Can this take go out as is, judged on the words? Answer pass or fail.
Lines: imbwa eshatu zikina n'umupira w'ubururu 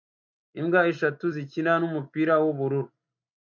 pass